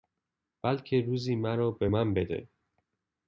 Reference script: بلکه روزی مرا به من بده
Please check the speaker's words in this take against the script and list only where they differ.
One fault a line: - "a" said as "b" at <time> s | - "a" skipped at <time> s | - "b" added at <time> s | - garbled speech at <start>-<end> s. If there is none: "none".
none